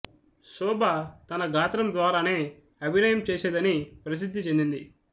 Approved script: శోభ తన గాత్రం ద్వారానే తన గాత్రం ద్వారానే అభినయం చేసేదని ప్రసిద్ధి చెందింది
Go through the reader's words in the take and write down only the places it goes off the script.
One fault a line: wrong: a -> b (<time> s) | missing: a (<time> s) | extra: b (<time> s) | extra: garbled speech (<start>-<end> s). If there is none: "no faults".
missing: తన గాత్రం ద్వారానే (2.4 s)